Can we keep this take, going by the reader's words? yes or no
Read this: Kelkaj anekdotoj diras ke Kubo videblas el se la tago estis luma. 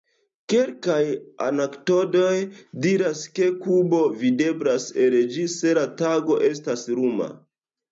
no